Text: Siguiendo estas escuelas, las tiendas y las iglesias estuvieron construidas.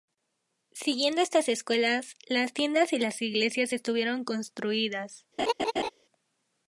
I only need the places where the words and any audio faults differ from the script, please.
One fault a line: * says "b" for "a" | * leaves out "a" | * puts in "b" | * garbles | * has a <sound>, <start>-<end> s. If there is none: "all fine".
* has a laugh, 5.4-5.9 s